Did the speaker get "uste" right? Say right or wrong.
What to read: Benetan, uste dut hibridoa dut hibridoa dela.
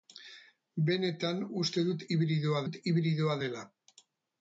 right